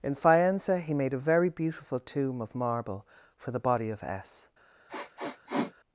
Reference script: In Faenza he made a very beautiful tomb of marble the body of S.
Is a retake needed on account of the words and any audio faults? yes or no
yes